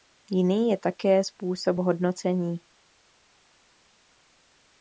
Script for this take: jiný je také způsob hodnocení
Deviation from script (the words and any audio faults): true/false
false